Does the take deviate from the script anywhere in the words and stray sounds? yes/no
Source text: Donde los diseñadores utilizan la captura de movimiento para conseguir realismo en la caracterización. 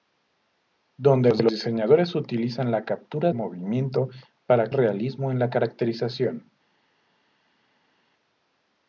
yes